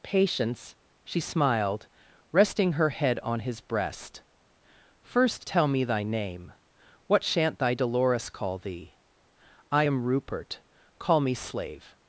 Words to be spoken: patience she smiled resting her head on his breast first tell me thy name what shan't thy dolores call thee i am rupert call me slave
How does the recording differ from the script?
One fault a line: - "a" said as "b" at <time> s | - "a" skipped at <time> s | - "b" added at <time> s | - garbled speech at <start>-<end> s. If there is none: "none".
none